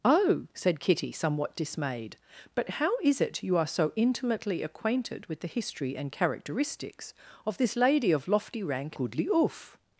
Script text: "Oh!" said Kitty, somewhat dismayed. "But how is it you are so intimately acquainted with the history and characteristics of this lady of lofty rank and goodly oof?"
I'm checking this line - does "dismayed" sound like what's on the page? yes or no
yes